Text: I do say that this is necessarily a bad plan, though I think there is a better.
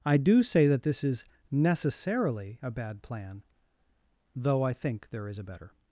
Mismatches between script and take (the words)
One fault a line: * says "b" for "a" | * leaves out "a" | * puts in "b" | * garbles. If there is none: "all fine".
all fine